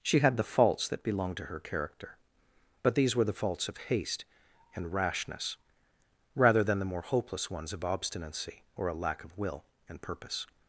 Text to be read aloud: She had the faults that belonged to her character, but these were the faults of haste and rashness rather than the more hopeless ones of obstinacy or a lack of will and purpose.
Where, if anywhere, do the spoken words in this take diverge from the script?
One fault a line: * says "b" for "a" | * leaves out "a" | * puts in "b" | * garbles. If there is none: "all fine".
all fine